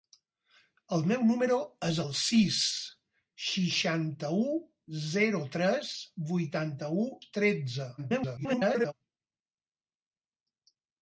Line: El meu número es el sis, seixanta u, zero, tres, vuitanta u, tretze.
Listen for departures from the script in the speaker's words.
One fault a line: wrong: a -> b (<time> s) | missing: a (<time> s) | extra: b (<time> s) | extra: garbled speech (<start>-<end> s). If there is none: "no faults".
extra: garbled speech (8.0-8.9 s)